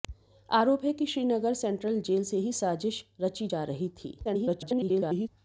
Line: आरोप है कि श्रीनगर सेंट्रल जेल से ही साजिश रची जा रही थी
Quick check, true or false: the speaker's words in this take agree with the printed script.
false